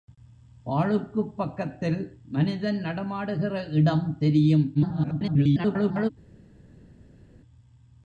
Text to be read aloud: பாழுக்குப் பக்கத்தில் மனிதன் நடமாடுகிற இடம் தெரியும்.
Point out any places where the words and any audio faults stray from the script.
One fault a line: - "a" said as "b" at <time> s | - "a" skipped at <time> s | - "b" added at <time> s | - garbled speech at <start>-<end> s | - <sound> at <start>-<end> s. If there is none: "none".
- garbled speech at 4.7-6.1 s